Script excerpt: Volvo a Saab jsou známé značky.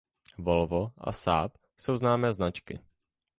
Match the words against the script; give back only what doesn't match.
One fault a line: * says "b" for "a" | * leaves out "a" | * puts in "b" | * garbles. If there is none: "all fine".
all fine